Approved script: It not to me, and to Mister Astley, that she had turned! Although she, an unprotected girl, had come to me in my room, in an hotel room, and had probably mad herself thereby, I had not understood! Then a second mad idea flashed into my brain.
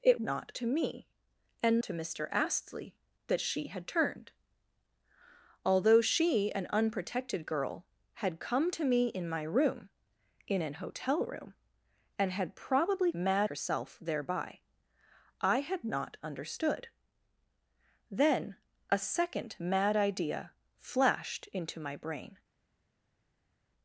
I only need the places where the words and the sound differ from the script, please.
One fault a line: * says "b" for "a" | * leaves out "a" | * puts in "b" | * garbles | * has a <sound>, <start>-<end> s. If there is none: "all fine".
all fine